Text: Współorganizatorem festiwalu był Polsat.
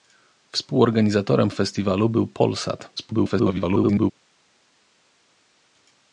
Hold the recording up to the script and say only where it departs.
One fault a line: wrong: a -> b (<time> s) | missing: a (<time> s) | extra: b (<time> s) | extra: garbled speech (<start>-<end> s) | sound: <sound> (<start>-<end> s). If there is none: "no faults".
extra: garbled speech (3.0-4.1 s)